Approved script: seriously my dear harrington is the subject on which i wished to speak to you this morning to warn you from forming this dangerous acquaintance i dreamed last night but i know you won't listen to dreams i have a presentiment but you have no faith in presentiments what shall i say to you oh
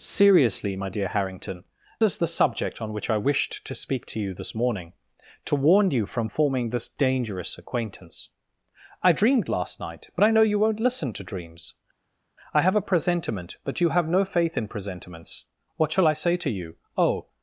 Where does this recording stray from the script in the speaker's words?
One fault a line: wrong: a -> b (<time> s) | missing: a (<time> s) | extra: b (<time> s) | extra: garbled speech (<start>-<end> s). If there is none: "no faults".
no faults